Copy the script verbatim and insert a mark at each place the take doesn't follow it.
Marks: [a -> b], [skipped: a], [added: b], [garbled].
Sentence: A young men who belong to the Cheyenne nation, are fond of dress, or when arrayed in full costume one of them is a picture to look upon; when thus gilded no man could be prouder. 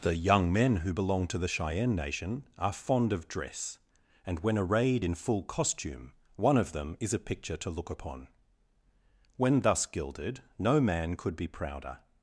[A -> The] young men who belong to the Cheyenne nation, are fond of dress, [or -> and] when arrayed in full costume one of them is a picture to look upon; when thus gilded no man could be prouder.